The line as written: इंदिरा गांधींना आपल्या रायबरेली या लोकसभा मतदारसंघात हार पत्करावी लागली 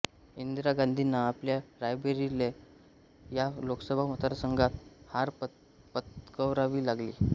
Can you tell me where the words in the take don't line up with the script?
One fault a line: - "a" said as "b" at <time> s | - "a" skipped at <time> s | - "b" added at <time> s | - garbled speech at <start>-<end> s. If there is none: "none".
none